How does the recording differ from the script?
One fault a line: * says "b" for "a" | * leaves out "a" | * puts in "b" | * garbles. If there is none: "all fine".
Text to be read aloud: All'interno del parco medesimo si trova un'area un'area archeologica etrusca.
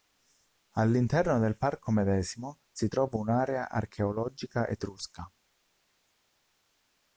* leaves out "un'area"